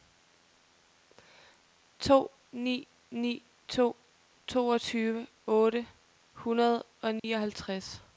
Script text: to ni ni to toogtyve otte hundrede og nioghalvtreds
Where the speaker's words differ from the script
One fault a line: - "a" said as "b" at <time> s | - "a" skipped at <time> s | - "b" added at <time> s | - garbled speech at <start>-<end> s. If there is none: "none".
none